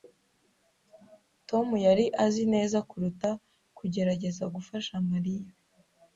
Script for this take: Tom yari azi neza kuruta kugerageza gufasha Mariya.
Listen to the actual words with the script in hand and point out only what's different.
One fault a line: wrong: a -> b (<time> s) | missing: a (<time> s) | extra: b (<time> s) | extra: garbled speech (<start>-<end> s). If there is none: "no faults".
no faults